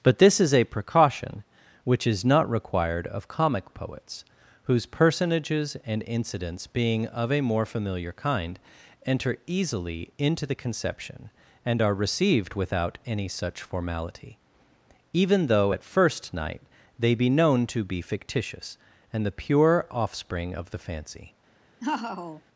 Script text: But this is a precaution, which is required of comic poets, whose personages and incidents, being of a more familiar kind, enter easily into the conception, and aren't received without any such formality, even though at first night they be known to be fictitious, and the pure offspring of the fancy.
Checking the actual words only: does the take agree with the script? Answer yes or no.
no